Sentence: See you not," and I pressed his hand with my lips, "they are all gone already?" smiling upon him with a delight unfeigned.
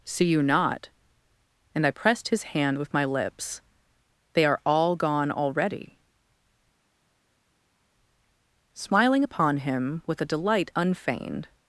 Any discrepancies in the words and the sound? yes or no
no